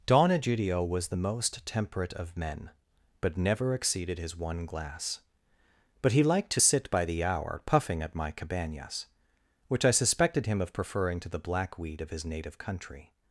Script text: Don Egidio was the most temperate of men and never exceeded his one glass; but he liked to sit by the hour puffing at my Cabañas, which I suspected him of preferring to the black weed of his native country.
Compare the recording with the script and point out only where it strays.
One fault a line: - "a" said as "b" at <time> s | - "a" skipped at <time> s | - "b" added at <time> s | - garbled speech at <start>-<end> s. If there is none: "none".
- "and" said as "but" at 3.2 s